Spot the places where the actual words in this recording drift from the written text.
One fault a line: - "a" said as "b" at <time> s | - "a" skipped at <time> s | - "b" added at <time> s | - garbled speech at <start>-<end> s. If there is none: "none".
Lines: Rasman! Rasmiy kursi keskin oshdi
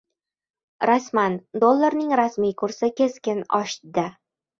- "Dollarning" added at 1.6 s